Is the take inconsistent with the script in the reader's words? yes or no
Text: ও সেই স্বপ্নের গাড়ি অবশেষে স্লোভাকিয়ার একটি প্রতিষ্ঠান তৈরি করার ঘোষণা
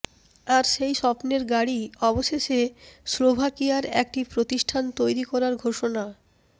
yes